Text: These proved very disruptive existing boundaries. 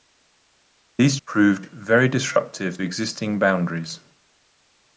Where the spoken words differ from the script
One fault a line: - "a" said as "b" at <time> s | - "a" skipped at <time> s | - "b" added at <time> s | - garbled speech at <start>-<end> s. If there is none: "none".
none